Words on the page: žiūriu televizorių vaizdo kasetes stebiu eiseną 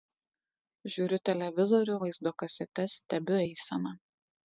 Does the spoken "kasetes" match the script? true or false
true